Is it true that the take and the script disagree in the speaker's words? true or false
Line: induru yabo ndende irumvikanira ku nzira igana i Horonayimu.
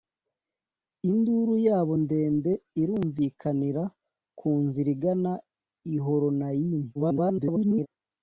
true